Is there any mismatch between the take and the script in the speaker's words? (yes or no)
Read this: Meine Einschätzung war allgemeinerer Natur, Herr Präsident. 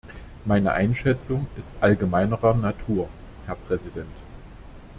yes